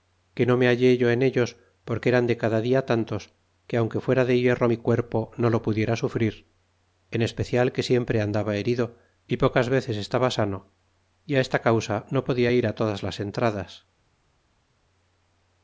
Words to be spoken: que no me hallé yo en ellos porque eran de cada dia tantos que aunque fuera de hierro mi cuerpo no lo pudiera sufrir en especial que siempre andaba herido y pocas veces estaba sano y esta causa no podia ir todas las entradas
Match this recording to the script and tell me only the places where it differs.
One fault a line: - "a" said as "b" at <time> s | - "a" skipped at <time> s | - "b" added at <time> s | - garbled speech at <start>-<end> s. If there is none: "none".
none